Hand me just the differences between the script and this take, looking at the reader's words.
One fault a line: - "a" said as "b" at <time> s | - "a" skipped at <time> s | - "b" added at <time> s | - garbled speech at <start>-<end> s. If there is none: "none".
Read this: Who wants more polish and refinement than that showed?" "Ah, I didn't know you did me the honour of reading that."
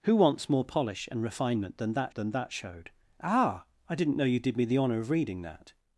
- "than that" added at 2.1 s